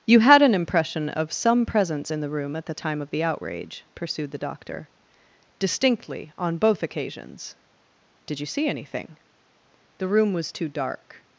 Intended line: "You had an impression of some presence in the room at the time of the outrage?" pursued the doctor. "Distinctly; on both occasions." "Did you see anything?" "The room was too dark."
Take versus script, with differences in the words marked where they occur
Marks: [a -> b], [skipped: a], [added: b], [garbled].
"You had an impression of some presence in the room at the time of the outrage?" pursued the doctor. "Distinctly; on both occasions." "Did you see anything?" "The room was too dark."